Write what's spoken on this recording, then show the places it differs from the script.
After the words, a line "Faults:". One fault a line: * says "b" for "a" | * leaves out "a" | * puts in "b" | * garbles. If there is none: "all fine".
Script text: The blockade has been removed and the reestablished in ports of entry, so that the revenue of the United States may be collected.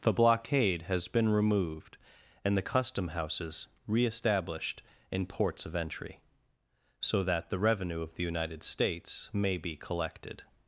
The blockade has been removed and the custom houses reestablished in ports of entry, so that the revenue of the United States may be collected.
Faults:
* puts in "custom houses"